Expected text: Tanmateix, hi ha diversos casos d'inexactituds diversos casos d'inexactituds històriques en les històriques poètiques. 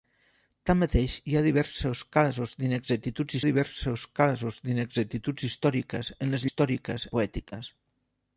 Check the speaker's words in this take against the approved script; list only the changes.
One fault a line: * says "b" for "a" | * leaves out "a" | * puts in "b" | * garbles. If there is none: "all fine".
all fine